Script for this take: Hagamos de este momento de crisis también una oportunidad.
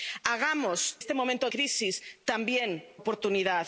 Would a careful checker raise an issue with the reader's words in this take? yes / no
yes